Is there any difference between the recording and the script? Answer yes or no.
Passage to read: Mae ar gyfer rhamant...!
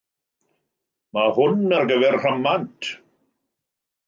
yes